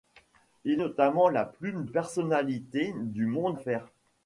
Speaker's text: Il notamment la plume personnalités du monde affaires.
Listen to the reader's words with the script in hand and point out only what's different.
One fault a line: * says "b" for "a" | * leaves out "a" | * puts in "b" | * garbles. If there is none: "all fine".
all fine